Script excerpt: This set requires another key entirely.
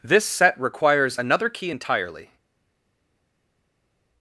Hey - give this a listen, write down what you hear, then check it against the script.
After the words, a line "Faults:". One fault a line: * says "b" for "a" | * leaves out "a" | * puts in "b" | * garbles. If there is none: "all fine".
This set requires another key entirely.
Faults:
all fine